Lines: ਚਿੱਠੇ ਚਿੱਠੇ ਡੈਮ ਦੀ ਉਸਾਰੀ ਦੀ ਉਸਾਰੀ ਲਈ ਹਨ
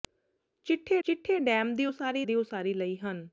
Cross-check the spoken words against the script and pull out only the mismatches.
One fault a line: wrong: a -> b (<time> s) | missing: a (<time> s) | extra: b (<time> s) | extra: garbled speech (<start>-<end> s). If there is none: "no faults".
no faults